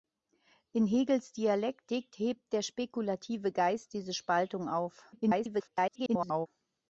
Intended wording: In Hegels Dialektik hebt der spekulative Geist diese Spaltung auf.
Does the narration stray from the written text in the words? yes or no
yes